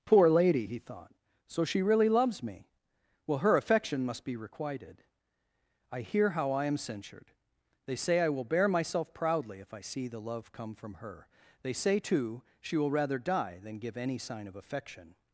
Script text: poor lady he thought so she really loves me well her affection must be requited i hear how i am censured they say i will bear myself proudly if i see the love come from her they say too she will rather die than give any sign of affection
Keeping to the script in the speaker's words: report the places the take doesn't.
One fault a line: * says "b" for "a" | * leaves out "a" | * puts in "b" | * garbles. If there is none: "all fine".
all fine